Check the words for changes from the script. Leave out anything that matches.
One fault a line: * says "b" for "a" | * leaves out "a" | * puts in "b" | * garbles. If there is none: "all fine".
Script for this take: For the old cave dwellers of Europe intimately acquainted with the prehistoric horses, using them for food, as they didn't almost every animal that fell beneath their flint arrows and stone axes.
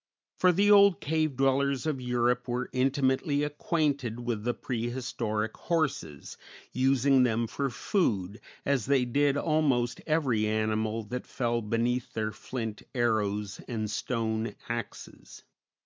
* puts in "were"
* says "did" for "didn't"